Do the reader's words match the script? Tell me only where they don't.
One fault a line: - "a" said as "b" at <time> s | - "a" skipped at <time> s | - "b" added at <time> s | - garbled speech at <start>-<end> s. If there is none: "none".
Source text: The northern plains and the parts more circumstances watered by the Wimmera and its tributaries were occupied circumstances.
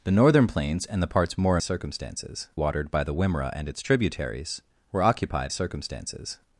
none